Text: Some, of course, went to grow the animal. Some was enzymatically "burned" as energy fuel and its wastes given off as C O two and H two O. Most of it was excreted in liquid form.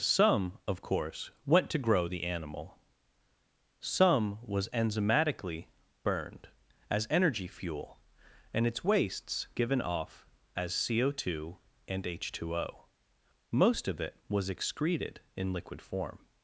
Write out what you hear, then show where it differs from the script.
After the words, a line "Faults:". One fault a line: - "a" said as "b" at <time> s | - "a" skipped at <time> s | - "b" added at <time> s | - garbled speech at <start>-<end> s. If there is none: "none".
Some, of course, went to grow the animal. Some was enzymatically "burned" as energy fuel and its wastes given off as C O two and H two O. Most of it was excreted in liquid form.
Faults:
none